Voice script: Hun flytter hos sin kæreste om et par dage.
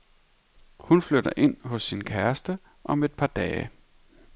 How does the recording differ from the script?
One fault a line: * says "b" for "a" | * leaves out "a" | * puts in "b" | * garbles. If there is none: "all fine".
* puts in "ind"